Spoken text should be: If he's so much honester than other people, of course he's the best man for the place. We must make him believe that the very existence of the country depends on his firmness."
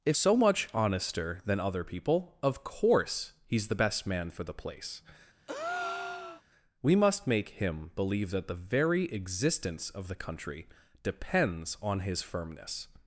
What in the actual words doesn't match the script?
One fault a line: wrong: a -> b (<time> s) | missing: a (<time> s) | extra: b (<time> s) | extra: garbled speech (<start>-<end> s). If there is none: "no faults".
missing: he's (0.2 s)